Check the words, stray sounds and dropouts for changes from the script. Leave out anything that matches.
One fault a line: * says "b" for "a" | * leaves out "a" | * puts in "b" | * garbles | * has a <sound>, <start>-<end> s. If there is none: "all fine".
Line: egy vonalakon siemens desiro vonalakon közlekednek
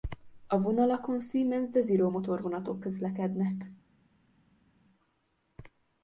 * says "a" for "egy"
* says "motorvonatok" for "vonalakon"